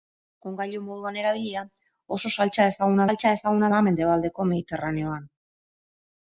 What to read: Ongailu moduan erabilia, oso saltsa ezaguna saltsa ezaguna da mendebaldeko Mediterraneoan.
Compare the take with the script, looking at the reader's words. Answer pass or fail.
pass